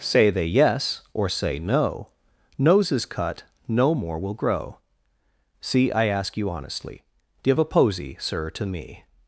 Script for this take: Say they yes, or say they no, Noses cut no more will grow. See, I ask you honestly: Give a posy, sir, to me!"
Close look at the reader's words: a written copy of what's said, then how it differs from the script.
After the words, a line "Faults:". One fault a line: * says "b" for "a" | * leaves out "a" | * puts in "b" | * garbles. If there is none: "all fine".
Say they yes, or say no, Noses cut no more will grow. See, I ask you honestly: Give a posy, sir, to me!"
Faults:
* leaves out "they"